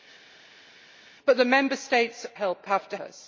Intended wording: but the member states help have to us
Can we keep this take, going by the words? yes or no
yes